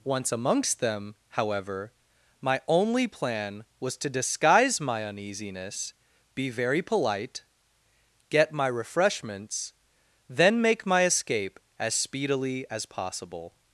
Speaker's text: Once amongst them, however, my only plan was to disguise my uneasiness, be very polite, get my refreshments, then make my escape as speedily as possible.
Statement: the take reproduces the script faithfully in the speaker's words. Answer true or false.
true